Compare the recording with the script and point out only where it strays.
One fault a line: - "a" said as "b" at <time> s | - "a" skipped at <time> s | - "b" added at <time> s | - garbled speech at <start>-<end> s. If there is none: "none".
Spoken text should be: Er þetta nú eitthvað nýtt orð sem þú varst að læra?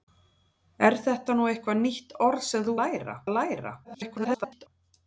- "varst" said as "læra" at 2.8 s
- garbled speech at 3.8-4.7 s